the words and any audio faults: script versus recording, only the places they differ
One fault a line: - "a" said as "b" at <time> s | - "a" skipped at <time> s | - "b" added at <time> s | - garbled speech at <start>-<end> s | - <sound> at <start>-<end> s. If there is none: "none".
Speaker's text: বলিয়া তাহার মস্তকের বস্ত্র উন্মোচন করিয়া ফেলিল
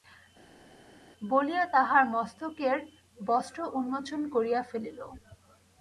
none